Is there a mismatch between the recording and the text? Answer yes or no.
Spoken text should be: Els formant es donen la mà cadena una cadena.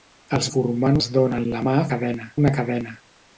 no